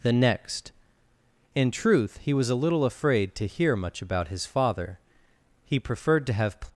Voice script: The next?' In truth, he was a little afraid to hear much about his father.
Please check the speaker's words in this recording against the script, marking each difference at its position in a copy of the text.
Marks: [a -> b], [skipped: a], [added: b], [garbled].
The next?' In truth, he was a little afraid to hear much about his father. [added: He preferred to have]